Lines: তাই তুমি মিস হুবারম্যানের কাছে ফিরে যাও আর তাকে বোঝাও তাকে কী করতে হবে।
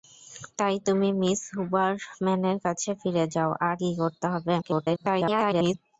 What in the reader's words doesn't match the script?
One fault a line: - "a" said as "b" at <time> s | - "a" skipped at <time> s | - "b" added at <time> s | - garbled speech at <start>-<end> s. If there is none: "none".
- "তাকে বোঝাও তাকে" skipped at 3.8 s
- garbled speech at 4.6-5.7 s